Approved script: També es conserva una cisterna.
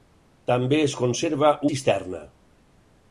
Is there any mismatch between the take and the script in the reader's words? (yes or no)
yes